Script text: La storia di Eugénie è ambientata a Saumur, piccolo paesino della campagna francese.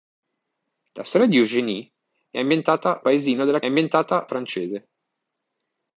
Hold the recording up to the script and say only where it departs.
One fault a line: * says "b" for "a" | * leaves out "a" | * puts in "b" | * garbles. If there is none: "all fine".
* leaves out "a Saumur piccolo"
* says "ambientata" for "campagna"